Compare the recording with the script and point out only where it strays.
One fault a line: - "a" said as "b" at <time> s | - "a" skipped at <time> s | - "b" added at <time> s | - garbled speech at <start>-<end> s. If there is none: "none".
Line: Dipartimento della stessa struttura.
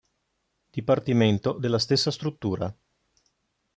none